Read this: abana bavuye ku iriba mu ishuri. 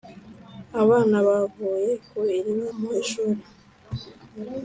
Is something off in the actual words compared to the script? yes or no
no